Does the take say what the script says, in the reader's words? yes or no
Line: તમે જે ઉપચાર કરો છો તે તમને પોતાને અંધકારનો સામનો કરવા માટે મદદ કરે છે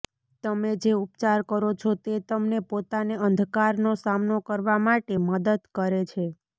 yes